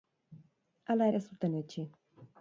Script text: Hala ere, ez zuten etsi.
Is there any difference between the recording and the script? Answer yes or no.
yes